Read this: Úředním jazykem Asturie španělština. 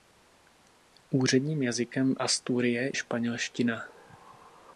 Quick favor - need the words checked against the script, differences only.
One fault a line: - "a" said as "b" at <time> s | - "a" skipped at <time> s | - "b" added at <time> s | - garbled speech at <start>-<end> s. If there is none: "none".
none